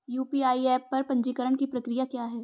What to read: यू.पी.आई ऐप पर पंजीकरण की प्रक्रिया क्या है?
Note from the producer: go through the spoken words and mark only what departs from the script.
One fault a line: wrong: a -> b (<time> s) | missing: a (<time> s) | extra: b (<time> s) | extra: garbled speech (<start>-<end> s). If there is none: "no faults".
no faults